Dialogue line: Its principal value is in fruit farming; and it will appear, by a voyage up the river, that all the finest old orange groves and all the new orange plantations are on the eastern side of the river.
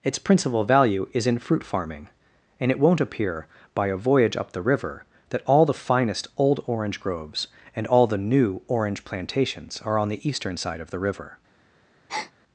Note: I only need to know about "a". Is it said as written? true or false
true